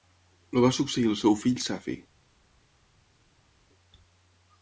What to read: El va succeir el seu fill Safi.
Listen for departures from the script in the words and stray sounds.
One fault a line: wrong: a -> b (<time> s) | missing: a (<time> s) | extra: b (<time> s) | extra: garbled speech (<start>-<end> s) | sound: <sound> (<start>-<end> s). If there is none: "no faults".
no faults